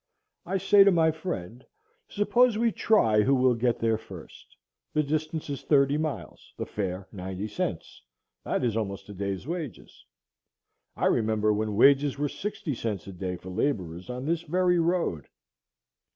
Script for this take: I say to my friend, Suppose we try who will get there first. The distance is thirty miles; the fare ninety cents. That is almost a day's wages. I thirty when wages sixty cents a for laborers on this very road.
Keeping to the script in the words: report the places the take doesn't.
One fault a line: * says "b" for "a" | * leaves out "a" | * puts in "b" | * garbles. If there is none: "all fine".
* says "remember" for "thirty"
* puts in "were"
* puts in "day"